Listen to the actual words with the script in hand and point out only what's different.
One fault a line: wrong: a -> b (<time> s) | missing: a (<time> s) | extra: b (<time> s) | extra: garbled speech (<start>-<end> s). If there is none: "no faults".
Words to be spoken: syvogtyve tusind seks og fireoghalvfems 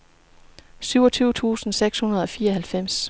extra: hundrede (2.0 s)